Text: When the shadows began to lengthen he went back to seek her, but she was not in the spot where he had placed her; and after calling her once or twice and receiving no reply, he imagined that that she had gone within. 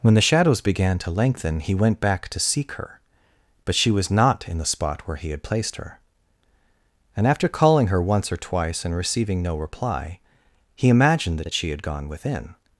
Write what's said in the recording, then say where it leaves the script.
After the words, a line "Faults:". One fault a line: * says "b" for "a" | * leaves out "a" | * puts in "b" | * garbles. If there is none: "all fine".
When the shadows began to lengthen he went back to seek her, but she was not in the spot where he had placed her; and after calling her once or twice and receiving no reply, he imagined that that she had gone within.
Faults:
all fine